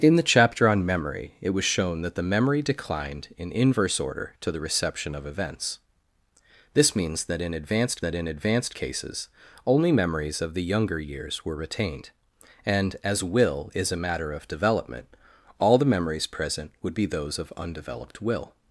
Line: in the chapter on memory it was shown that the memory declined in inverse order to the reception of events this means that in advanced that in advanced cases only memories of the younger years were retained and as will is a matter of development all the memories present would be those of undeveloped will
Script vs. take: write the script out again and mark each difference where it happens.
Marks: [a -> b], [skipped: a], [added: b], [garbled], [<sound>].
in the chapter on memory it was shown that the memory declined in inverse order to the reception of events this means that in advanced that in advanced cases only memories of the younger years were retained and as will is a matter of development all the memories present would be those of undeveloped will